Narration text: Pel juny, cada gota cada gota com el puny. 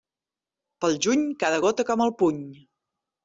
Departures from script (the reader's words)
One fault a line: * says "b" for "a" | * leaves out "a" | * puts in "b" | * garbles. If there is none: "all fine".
* leaves out "cada gota"